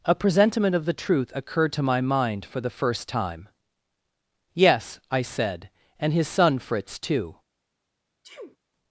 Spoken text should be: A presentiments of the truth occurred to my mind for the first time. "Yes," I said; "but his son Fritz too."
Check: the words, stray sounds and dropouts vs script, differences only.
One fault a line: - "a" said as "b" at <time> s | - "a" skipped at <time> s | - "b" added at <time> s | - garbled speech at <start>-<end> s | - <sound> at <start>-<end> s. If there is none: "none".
- "presentiments" said as "presentiment" at 0.1 s
- "but" said as "and" at 6.0 s
- sneeze at 8.2-8.6 s